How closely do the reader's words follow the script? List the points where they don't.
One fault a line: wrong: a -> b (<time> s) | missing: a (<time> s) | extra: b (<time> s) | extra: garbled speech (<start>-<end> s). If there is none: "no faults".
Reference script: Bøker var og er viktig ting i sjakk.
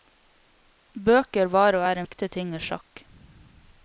no faults